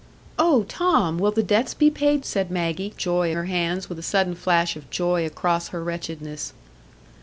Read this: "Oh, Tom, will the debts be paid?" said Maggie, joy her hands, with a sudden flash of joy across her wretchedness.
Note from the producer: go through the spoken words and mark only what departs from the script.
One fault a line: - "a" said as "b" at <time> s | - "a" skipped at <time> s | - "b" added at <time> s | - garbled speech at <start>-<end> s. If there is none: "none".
none